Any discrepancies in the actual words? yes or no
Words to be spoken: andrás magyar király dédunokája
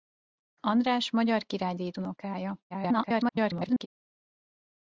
yes